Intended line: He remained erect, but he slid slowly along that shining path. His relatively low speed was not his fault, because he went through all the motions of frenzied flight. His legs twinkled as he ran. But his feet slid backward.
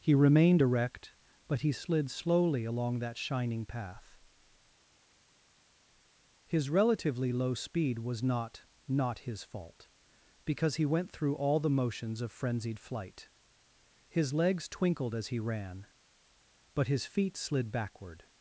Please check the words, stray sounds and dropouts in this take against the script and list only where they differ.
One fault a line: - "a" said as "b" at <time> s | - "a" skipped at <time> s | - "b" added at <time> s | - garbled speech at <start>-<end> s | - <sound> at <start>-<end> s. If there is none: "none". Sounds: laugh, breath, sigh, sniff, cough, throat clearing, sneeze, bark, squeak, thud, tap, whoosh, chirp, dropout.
- "not" added at 8.9 s